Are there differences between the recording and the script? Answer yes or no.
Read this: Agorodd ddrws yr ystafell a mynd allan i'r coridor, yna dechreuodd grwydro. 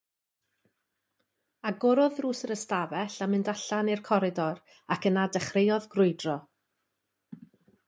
yes